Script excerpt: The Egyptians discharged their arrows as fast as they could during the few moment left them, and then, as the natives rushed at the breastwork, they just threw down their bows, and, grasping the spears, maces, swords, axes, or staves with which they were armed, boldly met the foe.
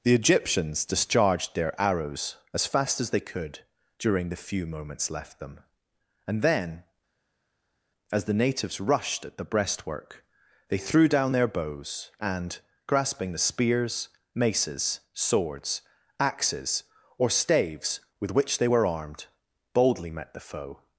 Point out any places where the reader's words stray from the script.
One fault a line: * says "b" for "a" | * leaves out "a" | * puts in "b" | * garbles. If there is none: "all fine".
* says "moments" for "moment"
* leaves out "just"